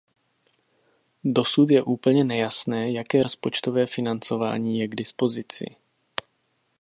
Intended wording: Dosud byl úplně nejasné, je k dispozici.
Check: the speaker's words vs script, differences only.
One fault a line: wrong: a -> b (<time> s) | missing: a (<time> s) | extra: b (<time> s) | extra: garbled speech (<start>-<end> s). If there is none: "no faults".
wrong: byl -> je (1.7 s)
extra: jaké rozpočtové financování (2.9 s)